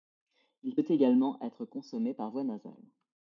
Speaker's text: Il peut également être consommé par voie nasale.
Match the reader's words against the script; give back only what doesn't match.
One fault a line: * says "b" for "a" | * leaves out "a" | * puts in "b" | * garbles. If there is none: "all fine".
all fine